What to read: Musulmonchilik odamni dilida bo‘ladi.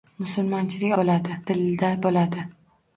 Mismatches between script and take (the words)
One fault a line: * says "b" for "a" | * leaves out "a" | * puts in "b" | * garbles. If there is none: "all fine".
* says "bo‘ladi" for "odamni"